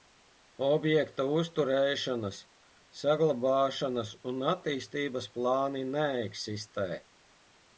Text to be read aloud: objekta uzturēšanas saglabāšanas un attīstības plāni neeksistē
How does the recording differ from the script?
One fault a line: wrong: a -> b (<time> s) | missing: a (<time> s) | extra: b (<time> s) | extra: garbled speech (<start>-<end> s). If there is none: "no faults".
no faults